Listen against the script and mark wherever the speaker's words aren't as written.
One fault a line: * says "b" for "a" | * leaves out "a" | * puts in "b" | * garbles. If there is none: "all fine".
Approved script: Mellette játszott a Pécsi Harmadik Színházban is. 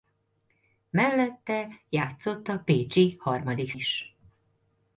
* leaves out "Színházban"